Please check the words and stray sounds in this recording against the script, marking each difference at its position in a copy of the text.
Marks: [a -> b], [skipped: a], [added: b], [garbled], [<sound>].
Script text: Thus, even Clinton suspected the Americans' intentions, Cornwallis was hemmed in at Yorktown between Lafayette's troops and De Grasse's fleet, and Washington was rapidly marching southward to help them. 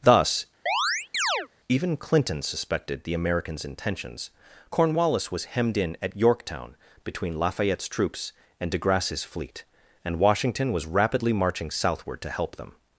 Thus, [chirp] even Clinton suspected the Americans' intentions, Cornwallis was hemmed in at Yorktown between Lafayette's troops and De Grasse's fleet, and Washington was rapidly marching southward to help them.